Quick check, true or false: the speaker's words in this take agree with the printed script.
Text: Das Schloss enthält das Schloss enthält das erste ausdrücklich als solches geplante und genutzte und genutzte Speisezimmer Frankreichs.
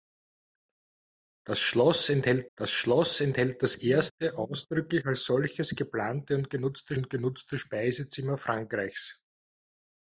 true